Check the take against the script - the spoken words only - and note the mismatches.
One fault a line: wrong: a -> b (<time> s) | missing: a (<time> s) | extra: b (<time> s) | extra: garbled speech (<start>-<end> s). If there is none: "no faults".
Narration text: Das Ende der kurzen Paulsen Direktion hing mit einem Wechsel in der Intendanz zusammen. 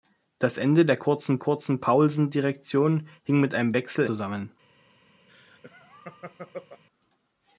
extra: kurzen (1.4 s)
missing: in der Intendanz (4.0 s)